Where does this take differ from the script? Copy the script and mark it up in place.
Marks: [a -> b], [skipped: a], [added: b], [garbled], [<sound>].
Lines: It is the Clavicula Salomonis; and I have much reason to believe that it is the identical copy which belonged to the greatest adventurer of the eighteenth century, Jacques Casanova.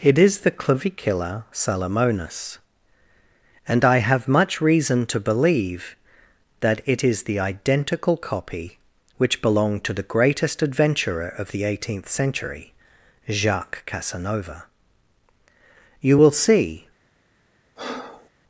It is the Clavicula Salomonis; and I have much reason to believe that it is the identical copy which belonged to the greatest adventurer of the eighteenth century, Jacques Casanova. [added: You will see] [breath]